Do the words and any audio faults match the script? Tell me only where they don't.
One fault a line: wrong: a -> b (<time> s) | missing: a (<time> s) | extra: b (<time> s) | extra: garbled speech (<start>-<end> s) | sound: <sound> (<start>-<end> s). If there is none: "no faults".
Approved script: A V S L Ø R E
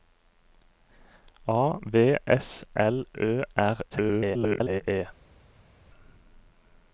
extra: garbled speech (3.9-4.8 s)